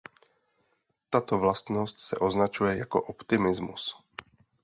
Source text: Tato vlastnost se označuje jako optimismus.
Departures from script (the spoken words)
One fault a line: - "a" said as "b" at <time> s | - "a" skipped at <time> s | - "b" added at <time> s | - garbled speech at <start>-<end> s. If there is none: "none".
none